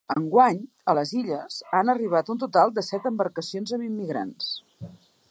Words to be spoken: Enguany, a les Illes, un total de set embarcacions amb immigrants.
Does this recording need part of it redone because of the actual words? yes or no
yes